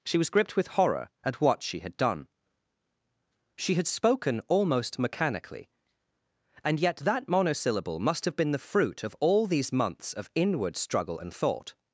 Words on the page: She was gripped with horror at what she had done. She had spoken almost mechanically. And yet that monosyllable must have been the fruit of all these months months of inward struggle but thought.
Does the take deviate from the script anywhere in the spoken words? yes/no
yes